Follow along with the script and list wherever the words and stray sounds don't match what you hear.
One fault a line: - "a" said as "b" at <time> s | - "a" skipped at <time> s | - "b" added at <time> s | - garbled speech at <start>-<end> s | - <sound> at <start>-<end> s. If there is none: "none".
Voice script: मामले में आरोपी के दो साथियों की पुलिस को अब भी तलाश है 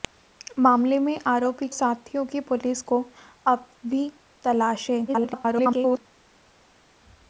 - "के दो" skipped at 1.7 s
- garbled speech at 5.1-6.0 s